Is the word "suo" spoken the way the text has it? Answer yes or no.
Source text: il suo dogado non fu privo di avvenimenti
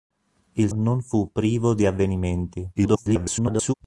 no